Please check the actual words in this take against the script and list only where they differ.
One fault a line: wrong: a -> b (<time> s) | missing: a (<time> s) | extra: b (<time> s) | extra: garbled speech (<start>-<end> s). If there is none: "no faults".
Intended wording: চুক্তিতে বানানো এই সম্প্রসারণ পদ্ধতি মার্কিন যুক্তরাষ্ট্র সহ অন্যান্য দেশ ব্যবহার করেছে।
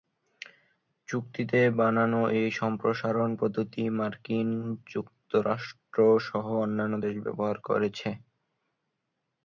no faults